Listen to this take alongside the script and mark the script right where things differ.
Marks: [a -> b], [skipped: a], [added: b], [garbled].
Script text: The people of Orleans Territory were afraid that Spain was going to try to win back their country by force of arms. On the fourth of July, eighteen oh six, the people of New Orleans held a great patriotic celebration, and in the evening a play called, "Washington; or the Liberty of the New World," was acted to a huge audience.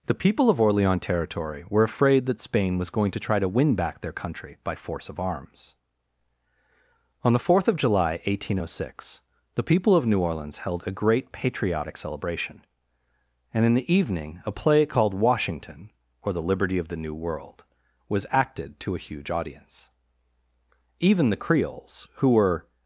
The people of Orleans Territory were afraid that Spain was going to try to win back their country by force of arms. On the fourth of July, eighteen oh six, the people of New Orleans held a great patriotic celebration, and in the evening a play called, "Washington; or the Liberty of the New World," was acted to a huge audience. [added: Even the Creoles who were]